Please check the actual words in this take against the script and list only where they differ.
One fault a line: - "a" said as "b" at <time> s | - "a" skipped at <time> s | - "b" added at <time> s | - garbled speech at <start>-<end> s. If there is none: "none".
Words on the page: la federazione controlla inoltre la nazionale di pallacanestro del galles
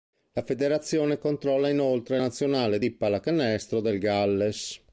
- "la" skipped at 2.2 s